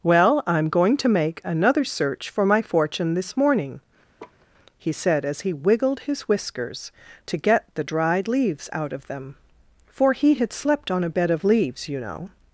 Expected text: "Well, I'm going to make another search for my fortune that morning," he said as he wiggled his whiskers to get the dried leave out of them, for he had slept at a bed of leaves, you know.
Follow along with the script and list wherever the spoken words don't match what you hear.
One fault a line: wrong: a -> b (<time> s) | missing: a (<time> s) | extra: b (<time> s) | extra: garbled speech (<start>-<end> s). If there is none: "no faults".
wrong: that -> this (3.1 s)
wrong: leave -> leaves (8.3 s)
wrong: at -> on (10.9 s)